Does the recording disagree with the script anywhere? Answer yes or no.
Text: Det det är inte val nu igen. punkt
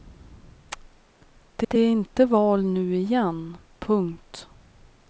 no